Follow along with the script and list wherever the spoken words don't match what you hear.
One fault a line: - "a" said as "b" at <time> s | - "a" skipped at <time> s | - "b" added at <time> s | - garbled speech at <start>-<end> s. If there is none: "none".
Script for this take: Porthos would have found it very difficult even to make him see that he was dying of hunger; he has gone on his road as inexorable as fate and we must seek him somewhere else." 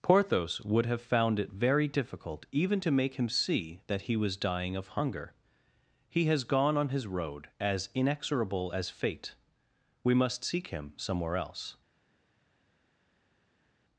- "and" skipped at 9.3 s